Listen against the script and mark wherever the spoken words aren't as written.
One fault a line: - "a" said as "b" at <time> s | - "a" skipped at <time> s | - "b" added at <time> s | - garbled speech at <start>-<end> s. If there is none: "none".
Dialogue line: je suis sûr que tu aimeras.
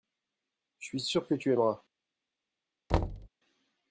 none